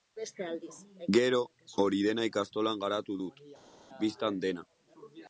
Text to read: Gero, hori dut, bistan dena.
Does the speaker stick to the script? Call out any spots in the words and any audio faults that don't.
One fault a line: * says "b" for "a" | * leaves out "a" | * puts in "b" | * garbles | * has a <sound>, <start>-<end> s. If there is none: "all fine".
* puts in "dena ikastolan garatu"